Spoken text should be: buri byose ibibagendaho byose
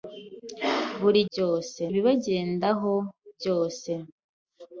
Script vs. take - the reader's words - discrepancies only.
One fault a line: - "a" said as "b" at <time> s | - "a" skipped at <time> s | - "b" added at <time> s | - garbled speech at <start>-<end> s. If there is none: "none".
none